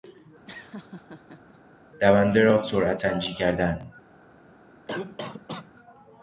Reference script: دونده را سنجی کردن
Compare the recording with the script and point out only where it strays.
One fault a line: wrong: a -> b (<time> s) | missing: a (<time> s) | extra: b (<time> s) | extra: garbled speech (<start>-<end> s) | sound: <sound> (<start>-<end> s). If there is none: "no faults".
sound: laugh (0.5-1.6 s)
extra: سرعت (2.6 s)
sound: cough (4.9-5.7 s)